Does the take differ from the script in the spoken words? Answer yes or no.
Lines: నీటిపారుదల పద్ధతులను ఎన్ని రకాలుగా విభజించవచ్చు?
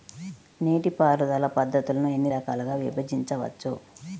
no